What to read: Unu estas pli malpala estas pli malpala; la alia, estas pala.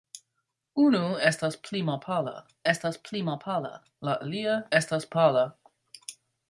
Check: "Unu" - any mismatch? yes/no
no